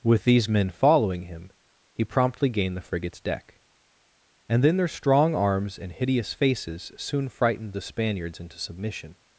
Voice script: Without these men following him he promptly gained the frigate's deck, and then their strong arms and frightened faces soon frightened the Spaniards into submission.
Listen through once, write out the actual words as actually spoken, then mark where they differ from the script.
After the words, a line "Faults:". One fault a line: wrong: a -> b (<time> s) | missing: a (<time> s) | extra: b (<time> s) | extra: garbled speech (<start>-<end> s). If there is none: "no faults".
With these men following him he promptly gained the frigate's deck, and then their strong arms and hideous faces soon frightened the Spaniards into submission.
Faults:
wrong: Without -> With (0.0 s)
wrong: frightened -> hideous (5.9 s)